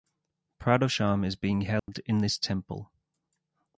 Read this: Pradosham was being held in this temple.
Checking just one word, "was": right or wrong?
wrong